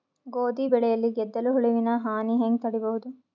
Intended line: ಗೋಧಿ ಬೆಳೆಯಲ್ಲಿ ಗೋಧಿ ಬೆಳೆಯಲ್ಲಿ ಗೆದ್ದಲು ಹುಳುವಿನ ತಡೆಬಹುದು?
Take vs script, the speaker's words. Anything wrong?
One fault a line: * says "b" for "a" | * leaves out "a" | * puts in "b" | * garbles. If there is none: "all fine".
* says "ಗೆದ್ದಲು ಹುಳುವಿನ ಹಾನಿ ಹೆಂಗ" for "ಗೋಧಿ ಬೆಳೆಯಲ್ಲಿ ಗೆದ್ದಲು ಹುಳುವಿನ"